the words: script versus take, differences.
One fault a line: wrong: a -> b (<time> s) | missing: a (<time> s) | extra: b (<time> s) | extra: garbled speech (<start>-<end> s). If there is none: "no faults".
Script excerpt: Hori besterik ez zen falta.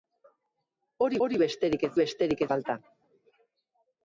extra: hori (1.3 s)
wrong: zen -> besterik (2.0 s)